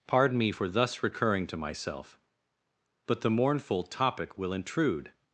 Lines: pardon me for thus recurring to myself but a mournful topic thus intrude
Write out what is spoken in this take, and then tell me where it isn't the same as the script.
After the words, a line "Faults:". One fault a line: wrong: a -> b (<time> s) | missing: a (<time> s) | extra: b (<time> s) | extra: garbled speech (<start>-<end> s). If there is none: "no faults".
pardon me for thus recurring to myself but the mournful topic will intrude
Faults:
wrong: a -> the (3.2 s)
wrong: thus -> will (4.4 s)